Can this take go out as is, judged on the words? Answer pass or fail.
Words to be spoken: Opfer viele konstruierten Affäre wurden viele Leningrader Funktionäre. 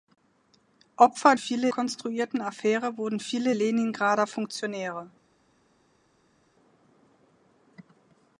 pass